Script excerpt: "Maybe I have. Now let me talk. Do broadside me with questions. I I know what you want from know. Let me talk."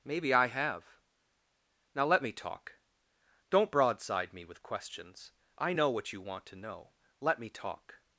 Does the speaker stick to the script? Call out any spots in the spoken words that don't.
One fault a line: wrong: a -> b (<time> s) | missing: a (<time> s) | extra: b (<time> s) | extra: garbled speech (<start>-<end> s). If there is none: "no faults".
wrong: Do -> Don't (3.5 s)
missing: I (5.7 s)
wrong: from -> to (6.5 s)